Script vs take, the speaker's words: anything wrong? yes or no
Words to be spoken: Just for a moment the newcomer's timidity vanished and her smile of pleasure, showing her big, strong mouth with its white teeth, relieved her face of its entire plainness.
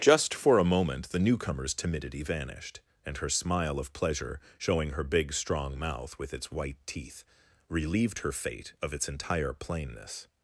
yes